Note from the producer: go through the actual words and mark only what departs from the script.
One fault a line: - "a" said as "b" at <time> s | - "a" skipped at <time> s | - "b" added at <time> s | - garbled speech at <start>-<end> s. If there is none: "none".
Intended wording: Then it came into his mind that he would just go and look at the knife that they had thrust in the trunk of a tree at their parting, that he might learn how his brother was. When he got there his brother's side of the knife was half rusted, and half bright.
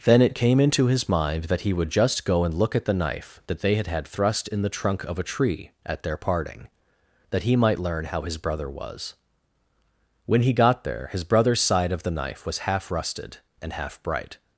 - "had" added at 3.9 s